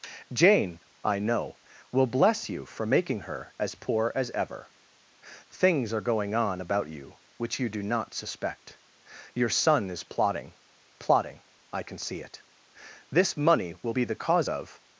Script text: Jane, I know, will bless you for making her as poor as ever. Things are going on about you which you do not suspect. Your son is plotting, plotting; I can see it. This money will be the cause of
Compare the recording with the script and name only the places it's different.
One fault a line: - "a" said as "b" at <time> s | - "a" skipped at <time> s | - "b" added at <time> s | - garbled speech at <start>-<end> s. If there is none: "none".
none